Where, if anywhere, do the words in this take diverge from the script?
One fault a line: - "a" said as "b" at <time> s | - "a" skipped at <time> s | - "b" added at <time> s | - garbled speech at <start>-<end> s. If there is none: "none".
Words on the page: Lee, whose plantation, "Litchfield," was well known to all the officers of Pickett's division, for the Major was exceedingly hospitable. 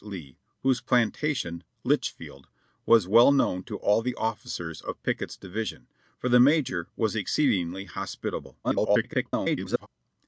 - garbled speech at 8.6-9.9 s